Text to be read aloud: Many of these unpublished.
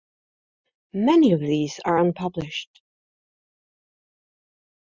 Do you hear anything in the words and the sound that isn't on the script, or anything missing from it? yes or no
yes